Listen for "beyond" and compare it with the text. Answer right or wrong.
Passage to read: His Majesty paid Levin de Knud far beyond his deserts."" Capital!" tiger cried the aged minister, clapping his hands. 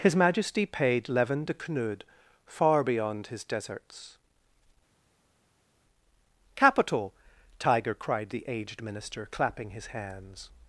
right